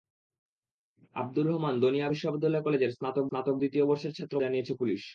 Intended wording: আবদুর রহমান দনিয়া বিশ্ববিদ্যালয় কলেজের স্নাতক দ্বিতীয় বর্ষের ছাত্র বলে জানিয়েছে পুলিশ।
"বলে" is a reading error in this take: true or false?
true